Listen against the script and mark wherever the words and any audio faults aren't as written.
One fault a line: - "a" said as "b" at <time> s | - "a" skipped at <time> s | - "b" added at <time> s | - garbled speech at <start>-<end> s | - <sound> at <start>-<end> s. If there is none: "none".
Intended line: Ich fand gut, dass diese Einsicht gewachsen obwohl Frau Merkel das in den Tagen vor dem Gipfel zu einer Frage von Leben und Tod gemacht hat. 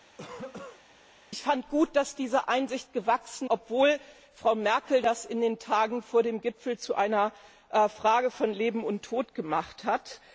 - cough at 0.2-0.8 s